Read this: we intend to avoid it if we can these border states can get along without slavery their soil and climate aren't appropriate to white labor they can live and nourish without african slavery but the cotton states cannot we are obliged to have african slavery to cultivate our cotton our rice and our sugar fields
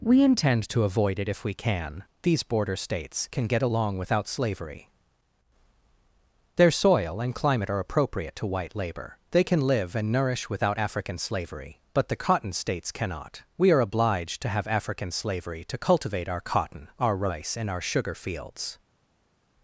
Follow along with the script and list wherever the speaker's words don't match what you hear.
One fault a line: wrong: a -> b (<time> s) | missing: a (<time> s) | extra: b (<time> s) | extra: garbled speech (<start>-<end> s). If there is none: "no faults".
wrong: aren't -> are (7.7 s)